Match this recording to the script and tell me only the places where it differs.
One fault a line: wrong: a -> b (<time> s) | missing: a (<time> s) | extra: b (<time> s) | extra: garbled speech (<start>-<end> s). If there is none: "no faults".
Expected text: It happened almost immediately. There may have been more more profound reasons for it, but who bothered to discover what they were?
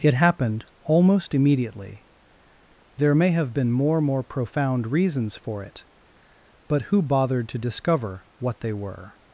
no faults